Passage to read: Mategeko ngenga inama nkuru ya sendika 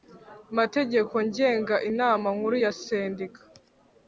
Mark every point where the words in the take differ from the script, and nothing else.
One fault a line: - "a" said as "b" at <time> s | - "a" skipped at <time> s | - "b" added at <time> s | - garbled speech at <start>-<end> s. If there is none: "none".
none